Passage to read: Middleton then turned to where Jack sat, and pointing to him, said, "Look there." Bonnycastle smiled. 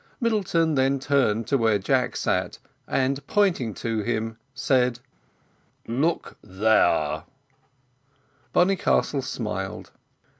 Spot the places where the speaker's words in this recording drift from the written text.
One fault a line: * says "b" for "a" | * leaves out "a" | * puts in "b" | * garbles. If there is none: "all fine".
all fine